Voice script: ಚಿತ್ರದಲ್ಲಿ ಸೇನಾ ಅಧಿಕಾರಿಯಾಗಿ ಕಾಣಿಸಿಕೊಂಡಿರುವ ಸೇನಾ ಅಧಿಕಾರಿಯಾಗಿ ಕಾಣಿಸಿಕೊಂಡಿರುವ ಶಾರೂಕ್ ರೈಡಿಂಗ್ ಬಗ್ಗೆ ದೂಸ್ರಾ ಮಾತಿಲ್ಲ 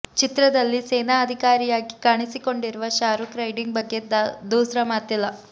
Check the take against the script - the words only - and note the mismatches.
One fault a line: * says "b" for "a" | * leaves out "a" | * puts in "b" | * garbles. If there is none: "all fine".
* leaves out "ಸೇನಾ ಅಧಿಕಾರಿಯಾಗಿ ಕಾಣಿಸಿಕೊಂಡಿರುವ"